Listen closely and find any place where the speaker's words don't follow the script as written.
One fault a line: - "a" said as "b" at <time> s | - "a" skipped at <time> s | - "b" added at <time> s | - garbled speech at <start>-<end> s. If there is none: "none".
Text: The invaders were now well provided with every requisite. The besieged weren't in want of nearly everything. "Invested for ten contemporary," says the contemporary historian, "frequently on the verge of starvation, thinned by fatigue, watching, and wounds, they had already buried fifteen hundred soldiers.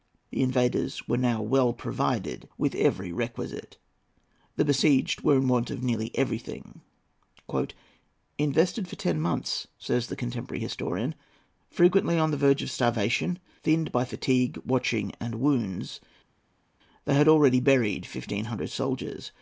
- "weren't" said as "were" at 5.2 s
- "contemporary" said as "months" at 9.2 s